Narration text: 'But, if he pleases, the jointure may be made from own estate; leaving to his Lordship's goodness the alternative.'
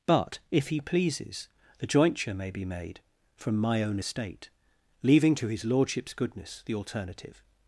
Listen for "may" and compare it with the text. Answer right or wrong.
right